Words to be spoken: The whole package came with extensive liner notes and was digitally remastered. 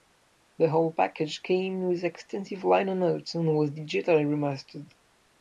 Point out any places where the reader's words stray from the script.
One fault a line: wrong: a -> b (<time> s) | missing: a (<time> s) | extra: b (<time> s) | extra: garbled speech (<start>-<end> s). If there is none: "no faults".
no faults